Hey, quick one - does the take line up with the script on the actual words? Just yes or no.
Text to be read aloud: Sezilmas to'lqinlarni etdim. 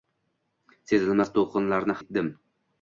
yes